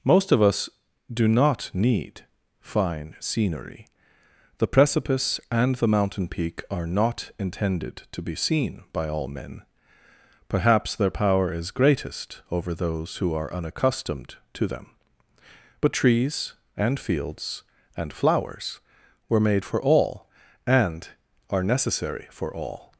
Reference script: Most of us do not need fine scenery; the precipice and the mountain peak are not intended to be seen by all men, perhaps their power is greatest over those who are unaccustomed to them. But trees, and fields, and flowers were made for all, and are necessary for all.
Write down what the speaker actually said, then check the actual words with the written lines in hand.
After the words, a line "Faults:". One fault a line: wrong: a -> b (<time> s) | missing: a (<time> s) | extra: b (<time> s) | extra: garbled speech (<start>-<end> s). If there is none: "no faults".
Most of us do not need fine scenery; the precipice and the mountain peak are not intended to be seen by all men, perhaps their power is greatest over those who are unaccustomed to them. But trees, and fields, and flowers were made for all, and are necessary for all.
Faults:
no faults